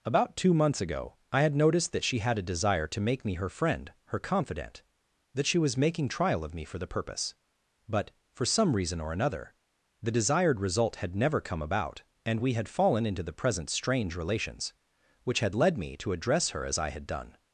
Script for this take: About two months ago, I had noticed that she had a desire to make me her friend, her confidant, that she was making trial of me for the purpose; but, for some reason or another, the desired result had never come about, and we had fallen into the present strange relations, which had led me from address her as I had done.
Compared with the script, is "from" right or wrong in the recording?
wrong